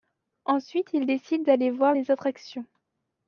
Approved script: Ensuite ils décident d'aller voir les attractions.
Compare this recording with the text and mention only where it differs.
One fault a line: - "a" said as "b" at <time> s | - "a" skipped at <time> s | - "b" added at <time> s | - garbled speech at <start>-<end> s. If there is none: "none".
none